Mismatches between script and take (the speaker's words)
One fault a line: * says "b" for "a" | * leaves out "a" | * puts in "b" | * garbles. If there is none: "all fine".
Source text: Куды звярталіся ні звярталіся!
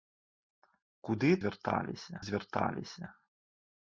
all fine